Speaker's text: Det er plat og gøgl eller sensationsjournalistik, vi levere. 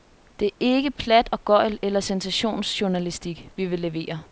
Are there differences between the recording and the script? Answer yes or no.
yes